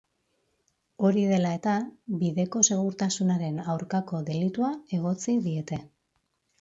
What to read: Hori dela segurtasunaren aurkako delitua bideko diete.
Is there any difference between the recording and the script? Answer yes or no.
yes